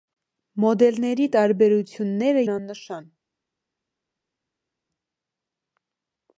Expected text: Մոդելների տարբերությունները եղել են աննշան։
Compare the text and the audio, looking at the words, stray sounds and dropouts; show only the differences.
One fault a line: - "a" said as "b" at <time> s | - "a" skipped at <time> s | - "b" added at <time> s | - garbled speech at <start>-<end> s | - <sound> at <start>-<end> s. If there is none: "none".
- "եղել" skipped at 2.4 s